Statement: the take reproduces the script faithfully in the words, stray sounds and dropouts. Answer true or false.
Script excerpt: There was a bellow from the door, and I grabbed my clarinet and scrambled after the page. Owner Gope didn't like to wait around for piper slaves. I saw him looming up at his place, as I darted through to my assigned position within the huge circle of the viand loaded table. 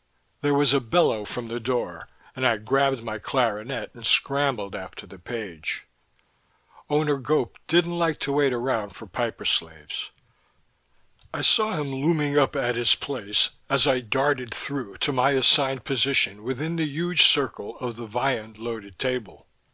true